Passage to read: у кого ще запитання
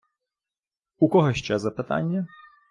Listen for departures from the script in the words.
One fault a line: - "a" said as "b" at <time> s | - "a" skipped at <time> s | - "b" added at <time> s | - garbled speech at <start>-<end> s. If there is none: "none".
none